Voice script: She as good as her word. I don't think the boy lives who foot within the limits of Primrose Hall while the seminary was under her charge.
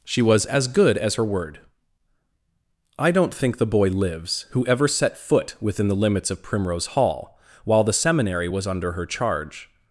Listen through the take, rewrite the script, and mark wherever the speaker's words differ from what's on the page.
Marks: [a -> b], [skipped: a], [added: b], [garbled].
She [added: was] as good as her word. I don't think the boy lives who [added: ever set] foot within the limits of Primrose Hall while the seminary was under her charge.